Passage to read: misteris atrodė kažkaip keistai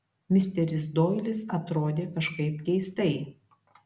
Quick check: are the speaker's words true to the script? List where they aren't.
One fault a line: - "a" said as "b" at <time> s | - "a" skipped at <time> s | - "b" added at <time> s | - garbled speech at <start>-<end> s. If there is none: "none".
- "doilis" added at 1.0 s